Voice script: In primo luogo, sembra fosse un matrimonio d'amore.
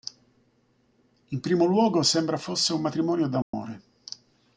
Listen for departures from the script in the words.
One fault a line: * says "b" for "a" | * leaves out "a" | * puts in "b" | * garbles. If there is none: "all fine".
all fine